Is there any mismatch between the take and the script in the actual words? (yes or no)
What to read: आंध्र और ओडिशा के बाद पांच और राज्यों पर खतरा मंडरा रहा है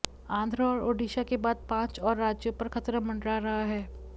no